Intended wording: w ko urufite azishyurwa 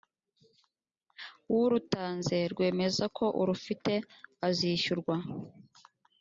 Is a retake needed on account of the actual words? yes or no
yes